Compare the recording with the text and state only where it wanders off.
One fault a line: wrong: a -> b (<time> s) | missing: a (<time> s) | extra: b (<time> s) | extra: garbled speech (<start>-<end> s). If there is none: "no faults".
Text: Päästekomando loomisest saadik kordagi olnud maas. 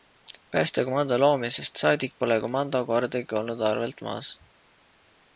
extra: pole komando (2.2 s)
extra: arvelt (3.7 s)